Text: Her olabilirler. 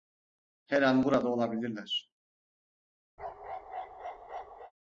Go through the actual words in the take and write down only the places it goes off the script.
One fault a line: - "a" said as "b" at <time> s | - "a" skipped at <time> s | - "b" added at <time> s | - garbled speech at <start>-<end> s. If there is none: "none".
- "an burada" added at 0.8 s